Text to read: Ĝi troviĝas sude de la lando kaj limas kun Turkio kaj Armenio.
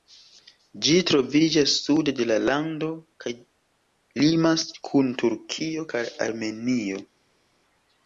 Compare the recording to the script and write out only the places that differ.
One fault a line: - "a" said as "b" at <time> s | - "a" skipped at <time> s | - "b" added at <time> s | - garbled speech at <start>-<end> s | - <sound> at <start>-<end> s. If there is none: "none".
none